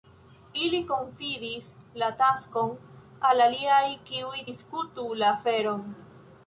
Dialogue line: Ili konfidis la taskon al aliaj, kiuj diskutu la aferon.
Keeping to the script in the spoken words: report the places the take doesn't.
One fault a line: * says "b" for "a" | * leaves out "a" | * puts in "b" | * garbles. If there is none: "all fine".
all fine